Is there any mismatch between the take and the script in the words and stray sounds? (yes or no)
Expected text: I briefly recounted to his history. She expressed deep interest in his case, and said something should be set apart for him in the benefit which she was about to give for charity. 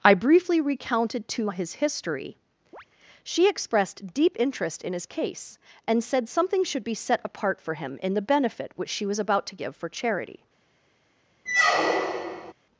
yes